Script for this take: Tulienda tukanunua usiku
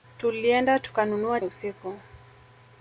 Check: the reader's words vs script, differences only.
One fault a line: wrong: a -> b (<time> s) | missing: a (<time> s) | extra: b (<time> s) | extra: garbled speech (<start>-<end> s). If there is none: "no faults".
no faults